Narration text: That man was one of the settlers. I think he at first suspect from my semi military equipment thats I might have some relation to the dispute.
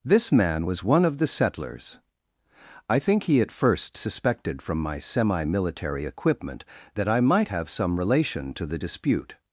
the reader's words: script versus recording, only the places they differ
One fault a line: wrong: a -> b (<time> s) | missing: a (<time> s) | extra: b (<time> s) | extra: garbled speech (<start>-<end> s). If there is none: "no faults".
wrong: That -> This (0.0 s)
wrong: suspect -> suspected (4.0 s)
wrong: thats -> that (7.0 s)